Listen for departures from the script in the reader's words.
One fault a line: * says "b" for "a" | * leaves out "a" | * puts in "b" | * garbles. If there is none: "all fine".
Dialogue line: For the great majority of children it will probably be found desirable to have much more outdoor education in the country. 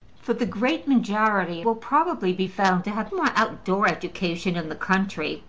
* leaves out "of children it"
* leaves out "desirable"
* leaves out "much"